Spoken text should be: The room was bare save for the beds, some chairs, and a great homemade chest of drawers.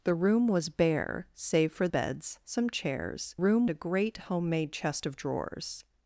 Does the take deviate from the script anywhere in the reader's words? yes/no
yes